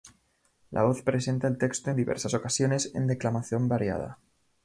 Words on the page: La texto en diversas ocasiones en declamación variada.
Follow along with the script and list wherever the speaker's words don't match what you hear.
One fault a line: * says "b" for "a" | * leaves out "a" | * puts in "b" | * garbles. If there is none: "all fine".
* puts in "voz presenta el"